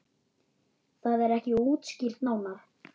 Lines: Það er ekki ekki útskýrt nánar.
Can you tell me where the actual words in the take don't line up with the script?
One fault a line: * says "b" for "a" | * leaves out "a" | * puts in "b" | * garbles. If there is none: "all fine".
* leaves out "ekki"